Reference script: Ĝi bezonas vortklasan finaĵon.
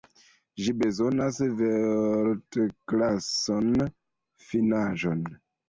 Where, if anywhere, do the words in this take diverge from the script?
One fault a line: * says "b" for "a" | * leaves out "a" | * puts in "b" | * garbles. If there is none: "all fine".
all fine